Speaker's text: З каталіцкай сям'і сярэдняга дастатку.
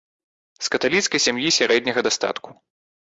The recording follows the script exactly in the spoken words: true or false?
true